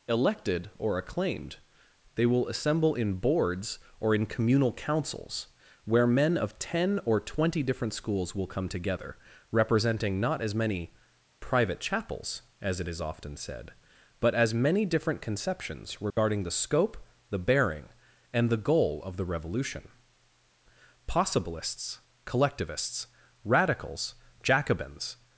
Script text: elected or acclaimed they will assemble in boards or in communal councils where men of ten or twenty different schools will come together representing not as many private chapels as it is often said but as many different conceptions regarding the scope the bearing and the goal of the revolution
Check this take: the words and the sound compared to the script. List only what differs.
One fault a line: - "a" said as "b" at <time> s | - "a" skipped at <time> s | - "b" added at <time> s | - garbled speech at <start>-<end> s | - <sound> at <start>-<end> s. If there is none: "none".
- dropout at 16.1-16.2 s
- "possibilists collectivists radicals jacobins" added at 21.1 s